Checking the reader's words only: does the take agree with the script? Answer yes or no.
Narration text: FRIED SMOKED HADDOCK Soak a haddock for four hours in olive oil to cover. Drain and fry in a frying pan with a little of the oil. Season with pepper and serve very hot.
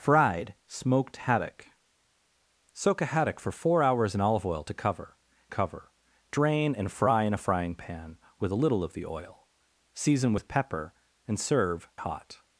no